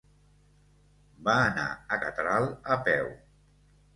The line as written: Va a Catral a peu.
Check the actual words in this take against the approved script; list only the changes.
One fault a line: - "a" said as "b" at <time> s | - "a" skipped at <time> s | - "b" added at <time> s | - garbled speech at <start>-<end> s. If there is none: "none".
- "anar" added at 1.5 s